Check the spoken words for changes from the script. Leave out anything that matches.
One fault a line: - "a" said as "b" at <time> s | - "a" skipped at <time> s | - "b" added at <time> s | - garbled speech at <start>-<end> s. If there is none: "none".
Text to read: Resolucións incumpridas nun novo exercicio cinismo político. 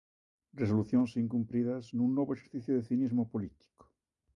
- "de" added at 2.7 s